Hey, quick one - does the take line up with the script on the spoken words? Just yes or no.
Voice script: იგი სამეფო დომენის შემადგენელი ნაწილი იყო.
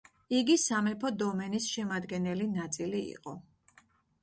yes